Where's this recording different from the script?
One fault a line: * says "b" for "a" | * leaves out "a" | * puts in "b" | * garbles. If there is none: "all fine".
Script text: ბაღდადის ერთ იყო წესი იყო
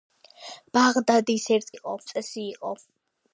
all fine